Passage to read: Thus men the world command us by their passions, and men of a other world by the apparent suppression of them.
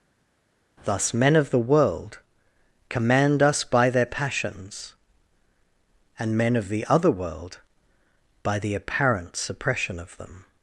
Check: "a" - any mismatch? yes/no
yes